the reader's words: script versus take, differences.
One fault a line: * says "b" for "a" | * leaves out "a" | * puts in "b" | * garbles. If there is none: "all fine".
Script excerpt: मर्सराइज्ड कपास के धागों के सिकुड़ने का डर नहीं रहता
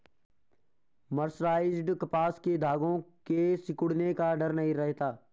all fine